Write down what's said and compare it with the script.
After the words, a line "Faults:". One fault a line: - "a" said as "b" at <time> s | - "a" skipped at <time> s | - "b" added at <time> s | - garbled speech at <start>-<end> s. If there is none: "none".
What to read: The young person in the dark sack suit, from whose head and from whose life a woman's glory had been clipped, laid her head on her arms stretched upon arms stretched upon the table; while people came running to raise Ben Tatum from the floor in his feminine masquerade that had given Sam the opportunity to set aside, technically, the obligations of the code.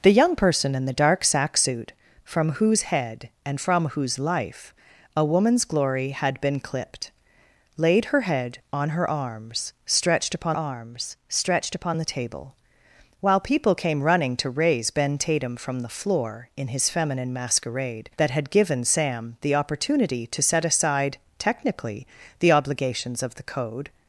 The young person in the dark sack suit, from whose head and from whose life a woman's glory had been clipped, laid her head on her arms stretched upon arms stretched upon the table; while people came running to raise Ben Tatum from the floor in his feminine masquerade that had given Sam the opportunity to set aside, technically, the obligations of the code.
Faults:
none